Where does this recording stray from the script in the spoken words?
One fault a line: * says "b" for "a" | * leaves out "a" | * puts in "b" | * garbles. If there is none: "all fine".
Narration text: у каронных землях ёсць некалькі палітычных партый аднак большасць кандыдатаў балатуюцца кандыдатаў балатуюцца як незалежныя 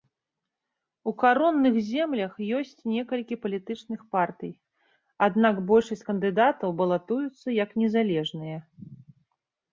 * leaves out "кандыдатаў балатуюцца"